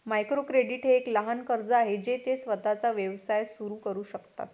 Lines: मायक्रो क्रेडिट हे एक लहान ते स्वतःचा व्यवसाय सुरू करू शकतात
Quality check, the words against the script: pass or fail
fail